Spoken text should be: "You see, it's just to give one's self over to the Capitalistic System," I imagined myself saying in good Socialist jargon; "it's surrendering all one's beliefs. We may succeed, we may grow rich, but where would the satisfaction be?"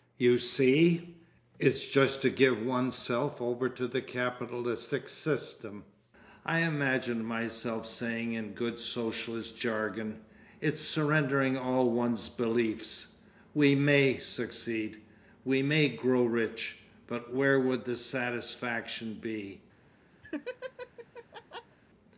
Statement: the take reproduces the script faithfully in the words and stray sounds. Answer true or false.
false